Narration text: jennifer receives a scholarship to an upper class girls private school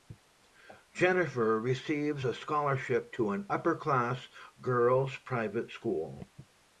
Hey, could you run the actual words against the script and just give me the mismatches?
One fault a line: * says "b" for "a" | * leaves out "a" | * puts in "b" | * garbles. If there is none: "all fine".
all fine